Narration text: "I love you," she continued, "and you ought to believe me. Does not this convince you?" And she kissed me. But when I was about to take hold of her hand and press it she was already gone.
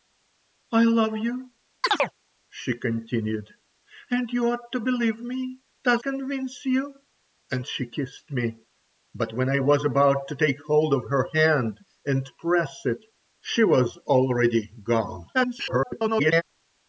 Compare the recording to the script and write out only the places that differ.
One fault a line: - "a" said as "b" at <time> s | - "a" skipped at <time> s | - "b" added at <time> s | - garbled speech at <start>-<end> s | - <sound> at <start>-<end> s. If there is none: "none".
- chirp at 1.8-2.1 s
- "not this" skipped at 6.0 s
- garbled speech at 15.3-16.4 s